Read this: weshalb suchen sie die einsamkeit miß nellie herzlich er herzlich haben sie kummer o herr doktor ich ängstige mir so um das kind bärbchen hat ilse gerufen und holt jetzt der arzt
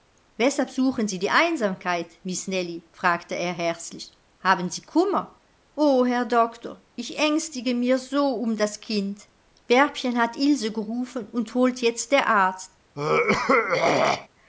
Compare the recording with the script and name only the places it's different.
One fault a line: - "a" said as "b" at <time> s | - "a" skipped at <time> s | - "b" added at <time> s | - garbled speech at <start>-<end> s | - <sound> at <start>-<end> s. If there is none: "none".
- "herzlich" said as "fragte" at 2.9 s
- throat clearing at 12.9-14.3 s